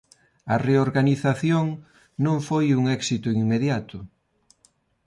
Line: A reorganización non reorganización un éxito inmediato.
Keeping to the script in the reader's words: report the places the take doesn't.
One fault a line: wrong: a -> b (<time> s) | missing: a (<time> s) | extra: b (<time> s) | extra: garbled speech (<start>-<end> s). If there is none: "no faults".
wrong: reorganización -> foi (2.5 s)